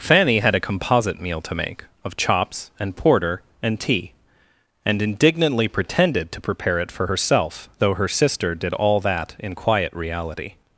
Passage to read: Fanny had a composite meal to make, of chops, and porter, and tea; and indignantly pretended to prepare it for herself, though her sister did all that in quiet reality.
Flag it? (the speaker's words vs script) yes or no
no